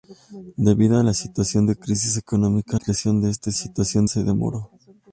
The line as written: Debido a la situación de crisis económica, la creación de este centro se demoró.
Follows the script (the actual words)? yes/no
no